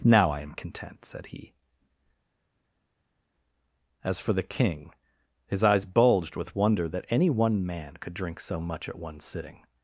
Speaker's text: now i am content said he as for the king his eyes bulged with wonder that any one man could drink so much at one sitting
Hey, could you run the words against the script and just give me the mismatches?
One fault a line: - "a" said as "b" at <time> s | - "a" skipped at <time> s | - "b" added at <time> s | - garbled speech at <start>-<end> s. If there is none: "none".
none